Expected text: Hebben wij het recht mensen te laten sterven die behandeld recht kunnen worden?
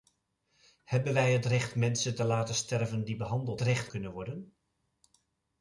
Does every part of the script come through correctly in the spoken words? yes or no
yes